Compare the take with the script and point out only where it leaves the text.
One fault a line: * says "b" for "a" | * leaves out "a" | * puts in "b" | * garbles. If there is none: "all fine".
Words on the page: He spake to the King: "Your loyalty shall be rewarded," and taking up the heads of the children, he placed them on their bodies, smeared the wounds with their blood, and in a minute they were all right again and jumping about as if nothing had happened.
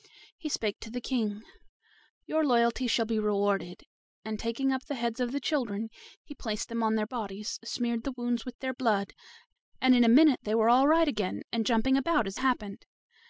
* leaves out "if nothing had"